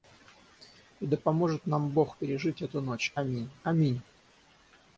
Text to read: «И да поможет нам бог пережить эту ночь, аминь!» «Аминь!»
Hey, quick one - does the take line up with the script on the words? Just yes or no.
yes